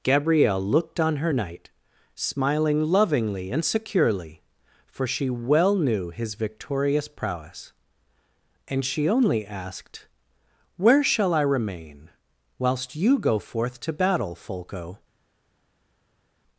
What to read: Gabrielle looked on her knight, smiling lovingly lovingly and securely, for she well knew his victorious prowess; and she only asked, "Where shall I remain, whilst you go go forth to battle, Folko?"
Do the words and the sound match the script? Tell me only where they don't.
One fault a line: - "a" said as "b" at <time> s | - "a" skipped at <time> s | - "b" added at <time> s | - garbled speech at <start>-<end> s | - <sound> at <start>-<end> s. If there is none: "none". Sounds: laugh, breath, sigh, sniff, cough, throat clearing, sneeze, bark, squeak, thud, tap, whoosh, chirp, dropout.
- "lovingly" skipped at 3.5 s
- "go" skipped at 13.4 s